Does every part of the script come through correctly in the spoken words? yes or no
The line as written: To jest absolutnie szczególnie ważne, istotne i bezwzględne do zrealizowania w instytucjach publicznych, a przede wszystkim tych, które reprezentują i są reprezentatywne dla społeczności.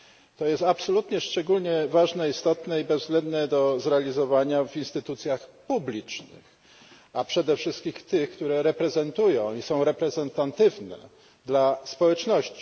yes